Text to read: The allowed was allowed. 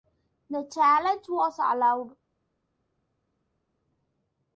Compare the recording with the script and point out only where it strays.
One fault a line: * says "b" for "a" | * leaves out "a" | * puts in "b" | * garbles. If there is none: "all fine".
* says "challenge" for "allowed"